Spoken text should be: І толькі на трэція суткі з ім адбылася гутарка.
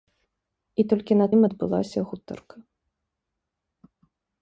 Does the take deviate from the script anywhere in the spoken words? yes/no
yes